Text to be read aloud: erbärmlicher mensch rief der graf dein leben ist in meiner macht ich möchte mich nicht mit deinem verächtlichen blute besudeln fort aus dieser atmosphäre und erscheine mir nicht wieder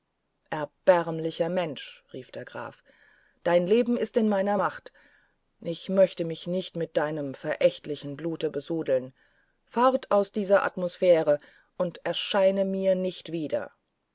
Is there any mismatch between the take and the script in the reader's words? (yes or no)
no